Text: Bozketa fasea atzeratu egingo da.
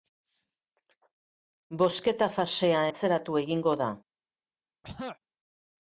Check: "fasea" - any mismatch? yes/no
no